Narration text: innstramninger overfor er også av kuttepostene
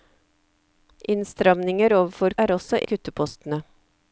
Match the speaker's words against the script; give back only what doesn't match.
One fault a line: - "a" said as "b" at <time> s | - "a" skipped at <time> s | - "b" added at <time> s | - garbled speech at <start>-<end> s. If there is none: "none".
none